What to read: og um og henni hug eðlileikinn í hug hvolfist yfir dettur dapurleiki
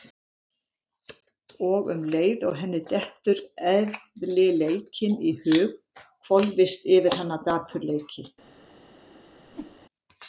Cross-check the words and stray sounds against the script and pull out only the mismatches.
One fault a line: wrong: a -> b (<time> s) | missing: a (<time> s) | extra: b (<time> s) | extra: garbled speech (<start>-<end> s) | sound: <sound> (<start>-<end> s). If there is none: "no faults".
extra: leið (2.1 s)
wrong: hug -> dettur (2.9 s)
wrong: dettur -> hana (7.2 s)
sound: whoosh (9.5-9.8 s)